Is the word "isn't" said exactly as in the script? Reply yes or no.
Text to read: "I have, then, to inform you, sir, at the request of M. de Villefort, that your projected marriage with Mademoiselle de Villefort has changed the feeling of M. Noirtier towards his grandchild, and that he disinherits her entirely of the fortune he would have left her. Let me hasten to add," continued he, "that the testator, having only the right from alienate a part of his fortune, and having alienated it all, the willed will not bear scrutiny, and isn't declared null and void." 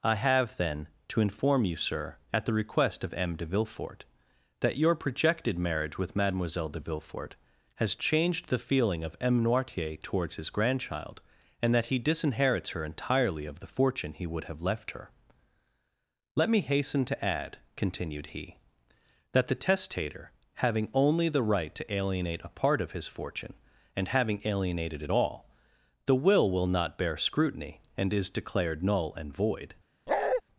no